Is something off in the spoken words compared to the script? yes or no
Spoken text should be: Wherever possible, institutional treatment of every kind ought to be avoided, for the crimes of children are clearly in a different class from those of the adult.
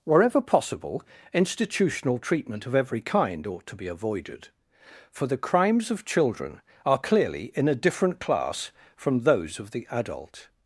no